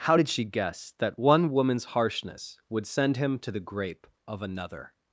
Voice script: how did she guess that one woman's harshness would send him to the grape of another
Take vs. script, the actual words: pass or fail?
pass